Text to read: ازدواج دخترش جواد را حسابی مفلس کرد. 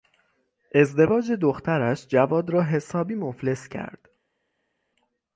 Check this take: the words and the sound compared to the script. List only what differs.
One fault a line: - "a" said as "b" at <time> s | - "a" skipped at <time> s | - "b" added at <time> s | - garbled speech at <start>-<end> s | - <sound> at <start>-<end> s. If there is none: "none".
none